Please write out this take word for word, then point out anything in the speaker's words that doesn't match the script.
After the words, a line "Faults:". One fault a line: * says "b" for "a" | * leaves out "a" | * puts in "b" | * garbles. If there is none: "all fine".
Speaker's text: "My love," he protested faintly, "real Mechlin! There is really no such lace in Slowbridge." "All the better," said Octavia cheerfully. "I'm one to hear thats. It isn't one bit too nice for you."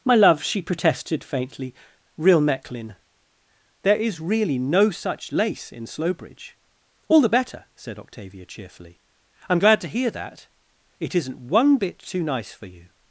"My love," she protested faintly, "real Mechlin! There is really no such lace in Slowbridge." "All the better," said Octavia cheerfully. "I'm glad to hear that. It isn't one bit too nice for you."
Faults:
* says "she" for "he"
* says "glad" for "one"
* says "that" for "thats"